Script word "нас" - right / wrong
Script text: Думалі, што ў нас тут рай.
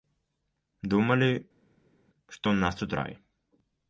right